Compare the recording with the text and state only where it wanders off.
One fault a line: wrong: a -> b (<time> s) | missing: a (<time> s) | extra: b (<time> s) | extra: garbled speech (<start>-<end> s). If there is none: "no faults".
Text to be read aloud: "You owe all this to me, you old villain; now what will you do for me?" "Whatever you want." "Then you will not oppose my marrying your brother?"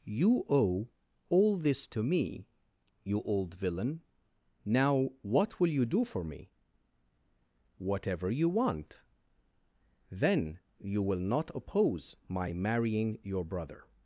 no faults